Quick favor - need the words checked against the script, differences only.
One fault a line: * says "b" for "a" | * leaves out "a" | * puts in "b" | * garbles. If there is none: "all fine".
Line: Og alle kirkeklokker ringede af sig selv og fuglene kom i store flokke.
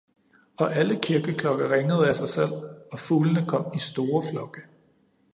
all fine